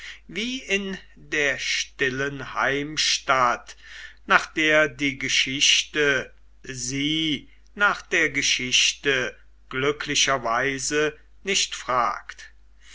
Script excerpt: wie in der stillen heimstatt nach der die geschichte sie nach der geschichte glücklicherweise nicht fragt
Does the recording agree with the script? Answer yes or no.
yes